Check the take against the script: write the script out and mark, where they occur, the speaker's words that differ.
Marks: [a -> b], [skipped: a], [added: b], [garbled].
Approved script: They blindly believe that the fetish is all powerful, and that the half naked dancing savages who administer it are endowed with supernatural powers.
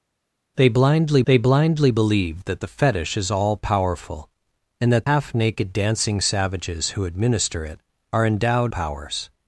They blindly [added: they blindly] believe that the fetish is all powerful, and that [skipped: the] half naked dancing savages who administer it are endowed [skipped: with supernatural] powers.